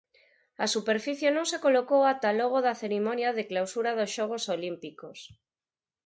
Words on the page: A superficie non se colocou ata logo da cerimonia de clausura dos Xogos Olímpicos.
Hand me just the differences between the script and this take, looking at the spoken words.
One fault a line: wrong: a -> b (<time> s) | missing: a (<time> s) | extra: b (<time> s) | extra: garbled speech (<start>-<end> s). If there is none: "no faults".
no faults